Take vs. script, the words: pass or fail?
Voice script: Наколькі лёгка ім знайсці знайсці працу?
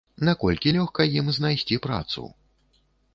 fail